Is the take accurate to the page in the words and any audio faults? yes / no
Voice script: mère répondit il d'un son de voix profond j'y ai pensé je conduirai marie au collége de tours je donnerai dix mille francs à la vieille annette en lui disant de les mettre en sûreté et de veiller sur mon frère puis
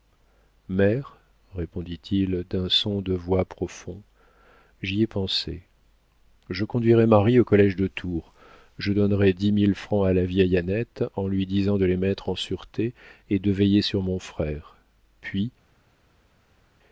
yes